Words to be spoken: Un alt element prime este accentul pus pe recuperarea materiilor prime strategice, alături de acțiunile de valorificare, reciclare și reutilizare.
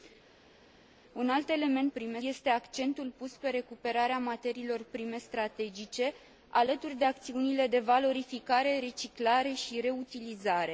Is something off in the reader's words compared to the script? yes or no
no